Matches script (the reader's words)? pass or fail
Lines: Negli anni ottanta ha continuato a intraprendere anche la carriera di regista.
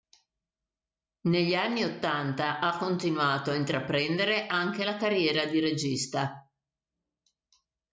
pass